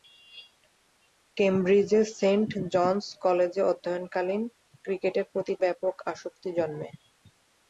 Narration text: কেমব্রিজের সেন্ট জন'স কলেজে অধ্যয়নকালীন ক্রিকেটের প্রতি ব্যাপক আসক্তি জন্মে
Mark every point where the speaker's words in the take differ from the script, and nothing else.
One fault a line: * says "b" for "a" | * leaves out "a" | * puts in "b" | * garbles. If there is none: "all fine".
all fine